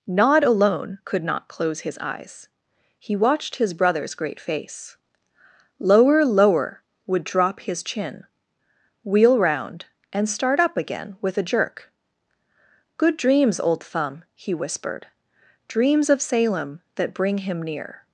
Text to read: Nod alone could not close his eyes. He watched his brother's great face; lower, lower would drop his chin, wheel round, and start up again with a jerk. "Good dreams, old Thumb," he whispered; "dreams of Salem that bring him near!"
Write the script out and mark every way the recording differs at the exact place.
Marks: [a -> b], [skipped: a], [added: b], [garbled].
Nod alone could not close his eyes. He watched his brother's great face; lower, lower would drop his chin, wheel round, and start up again with a jerk. "Good dreams, old Thumb," he whispered; "dreams of Salem that bring him near!"